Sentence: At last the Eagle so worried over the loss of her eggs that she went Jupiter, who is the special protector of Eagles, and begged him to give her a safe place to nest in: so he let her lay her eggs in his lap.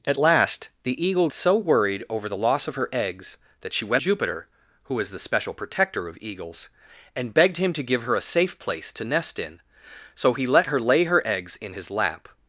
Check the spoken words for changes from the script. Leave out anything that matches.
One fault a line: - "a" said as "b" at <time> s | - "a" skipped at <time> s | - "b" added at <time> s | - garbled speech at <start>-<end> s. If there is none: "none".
none